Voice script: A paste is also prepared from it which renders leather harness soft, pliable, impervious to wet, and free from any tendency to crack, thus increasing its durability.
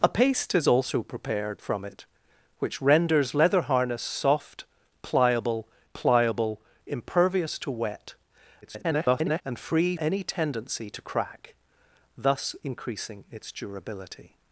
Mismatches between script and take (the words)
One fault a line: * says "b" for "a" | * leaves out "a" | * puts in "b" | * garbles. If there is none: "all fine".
* puts in "pliable"
* garbles
* leaves out "from"